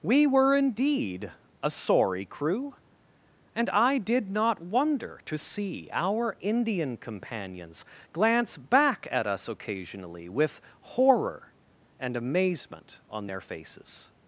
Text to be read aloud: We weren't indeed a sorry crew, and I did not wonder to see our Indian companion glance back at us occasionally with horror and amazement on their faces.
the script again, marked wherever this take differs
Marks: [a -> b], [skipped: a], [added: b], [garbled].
We [weren't -> were] indeed a sorry crew, and I did not wonder to see our Indian [companion -> companions] glance back at us occasionally with horror and amazement on their faces.